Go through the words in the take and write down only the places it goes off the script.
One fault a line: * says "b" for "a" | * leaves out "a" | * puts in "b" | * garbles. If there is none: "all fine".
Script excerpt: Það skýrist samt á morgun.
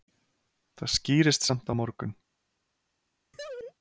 all fine